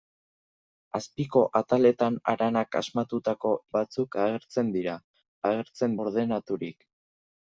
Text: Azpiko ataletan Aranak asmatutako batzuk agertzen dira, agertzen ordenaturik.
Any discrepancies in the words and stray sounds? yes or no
no